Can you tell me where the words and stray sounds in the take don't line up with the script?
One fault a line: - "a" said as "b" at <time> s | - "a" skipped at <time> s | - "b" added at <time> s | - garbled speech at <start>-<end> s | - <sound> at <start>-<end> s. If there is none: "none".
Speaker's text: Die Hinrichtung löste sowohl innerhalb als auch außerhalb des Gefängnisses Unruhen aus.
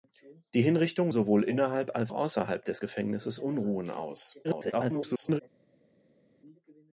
- "löste" skipped at 1.1 s
- "auch" skipped at 2.1 s
- garbled speech at 4.4-5.4 s